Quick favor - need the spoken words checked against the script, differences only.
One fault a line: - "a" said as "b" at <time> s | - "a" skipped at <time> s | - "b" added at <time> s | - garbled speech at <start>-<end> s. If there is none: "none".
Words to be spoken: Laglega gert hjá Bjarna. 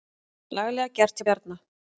none